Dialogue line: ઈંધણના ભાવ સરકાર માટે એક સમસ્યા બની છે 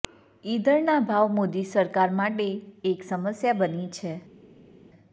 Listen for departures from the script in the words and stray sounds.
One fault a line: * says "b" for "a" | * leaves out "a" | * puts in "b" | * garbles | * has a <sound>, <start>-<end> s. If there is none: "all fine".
* puts in "મોદી"